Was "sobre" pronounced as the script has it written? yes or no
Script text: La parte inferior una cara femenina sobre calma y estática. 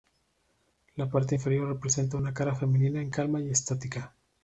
no